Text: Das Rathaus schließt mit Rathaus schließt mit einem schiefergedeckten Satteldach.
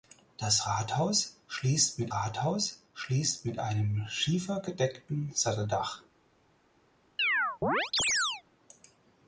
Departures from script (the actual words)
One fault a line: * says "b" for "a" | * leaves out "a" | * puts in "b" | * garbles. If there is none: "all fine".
all fine